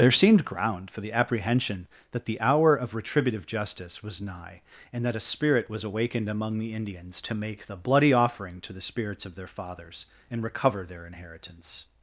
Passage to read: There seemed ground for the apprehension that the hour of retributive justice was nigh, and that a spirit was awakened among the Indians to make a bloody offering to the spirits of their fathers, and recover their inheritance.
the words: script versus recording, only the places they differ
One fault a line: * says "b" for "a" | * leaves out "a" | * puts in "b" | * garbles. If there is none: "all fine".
* says "the" for "a"